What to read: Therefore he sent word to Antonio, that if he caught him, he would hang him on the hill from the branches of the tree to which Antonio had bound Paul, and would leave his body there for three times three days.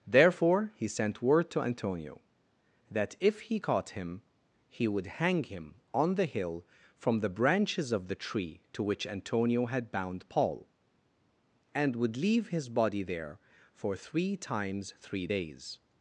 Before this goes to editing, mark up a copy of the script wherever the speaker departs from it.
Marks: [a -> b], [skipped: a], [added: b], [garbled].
Therefore he sent word to Antonio, that if he caught him, he would hang him on the hill from the branches of the tree to which Antonio had bound Paul, and would leave his body there for three times three days.